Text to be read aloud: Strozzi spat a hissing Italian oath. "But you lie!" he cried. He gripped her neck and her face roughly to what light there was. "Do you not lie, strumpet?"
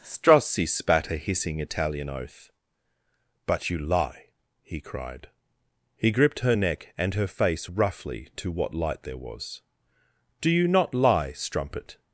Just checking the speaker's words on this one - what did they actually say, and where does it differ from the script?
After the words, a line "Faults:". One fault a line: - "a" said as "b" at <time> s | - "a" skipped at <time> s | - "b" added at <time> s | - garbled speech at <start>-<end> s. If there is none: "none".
Strozzi spat a hissing Italian oath. "But you lie!" he cried. He gripped her neck and her face roughly to what light there was. "Do you not lie, strumpet?"
Faults:
none